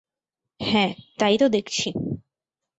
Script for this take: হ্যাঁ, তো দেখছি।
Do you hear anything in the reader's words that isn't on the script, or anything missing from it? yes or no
yes